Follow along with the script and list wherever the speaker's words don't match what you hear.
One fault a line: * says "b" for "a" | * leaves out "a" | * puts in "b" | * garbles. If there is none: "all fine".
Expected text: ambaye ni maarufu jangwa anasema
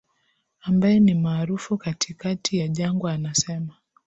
* puts in "katikati ya"